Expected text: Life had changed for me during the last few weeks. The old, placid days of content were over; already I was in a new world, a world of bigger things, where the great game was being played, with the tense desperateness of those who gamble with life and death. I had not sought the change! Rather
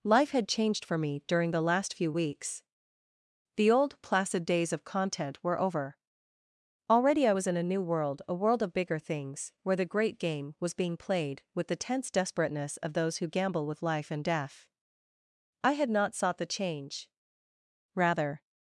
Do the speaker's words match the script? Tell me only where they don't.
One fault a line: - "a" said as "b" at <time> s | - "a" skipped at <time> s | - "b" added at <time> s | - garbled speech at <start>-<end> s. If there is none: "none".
none